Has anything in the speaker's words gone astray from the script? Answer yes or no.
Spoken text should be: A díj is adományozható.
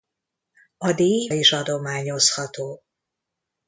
no